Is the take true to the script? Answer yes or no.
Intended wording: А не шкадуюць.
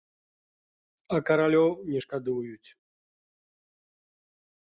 no